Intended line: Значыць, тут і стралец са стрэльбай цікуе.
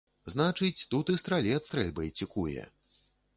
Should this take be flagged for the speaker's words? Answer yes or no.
yes